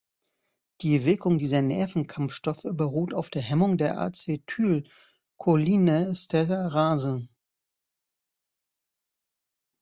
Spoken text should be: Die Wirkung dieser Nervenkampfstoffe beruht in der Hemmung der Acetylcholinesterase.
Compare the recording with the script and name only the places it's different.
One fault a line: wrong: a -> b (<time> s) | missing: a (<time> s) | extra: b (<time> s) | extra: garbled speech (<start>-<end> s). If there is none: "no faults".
wrong: in -> auf (3.1 s)